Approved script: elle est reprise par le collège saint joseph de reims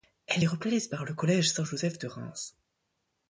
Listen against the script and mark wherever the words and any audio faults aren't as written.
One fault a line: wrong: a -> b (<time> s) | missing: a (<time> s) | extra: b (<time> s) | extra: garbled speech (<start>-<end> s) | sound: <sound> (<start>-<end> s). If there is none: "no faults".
no faults